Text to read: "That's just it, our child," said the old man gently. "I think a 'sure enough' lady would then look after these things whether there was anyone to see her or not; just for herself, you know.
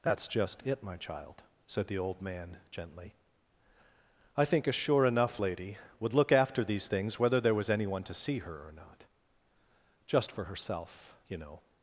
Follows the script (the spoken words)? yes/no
no